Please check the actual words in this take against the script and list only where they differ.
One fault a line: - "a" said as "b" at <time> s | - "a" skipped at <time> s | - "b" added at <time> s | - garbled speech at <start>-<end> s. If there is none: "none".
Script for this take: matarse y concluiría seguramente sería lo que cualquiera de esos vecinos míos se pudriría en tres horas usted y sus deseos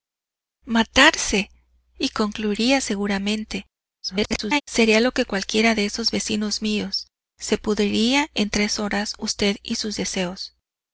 - garbled speech at 4.0-4.6 s